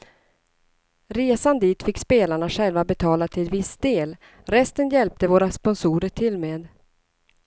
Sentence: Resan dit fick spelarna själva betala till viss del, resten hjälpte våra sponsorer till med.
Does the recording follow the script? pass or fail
pass